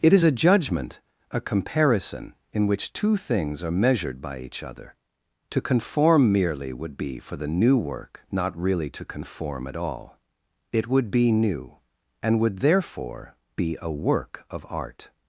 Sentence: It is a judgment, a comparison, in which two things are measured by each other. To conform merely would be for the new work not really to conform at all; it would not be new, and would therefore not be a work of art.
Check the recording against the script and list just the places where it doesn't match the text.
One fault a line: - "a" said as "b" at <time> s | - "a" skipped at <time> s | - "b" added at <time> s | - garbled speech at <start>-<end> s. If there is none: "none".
- "not" skipped at 11.1 s
- "not" skipped at 13.4 s